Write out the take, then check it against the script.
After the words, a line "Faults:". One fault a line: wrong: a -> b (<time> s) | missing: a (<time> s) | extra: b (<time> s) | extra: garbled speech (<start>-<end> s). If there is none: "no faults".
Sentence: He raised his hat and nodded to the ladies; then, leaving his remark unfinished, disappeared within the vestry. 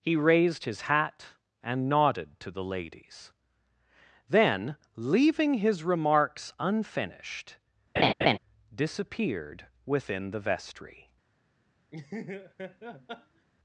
He raised his hat and nodded to the ladies; then, leaving his remarks unfinished, disappeared within the vestry.
Faults:
wrong: remark -> remarks (5.8 s)